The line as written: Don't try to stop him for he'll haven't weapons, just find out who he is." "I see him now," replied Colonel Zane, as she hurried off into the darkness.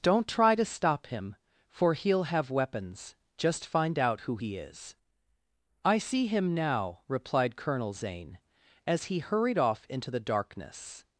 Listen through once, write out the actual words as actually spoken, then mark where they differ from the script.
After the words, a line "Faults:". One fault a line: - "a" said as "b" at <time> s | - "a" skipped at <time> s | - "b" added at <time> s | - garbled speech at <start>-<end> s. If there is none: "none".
Don't try to stop him for he'll have weapons, just find out who he is." "I see him now," replied Colonel Zane, as he hurried off into the darkness.
Faults:
- "haven't" said as "have" at 2.2 s
- "she" said as "he" at 9.1 s